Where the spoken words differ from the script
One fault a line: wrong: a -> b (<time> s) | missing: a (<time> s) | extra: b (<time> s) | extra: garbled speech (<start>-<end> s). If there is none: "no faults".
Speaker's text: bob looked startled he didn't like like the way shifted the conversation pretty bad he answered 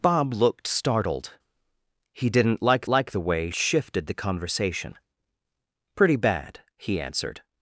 no faults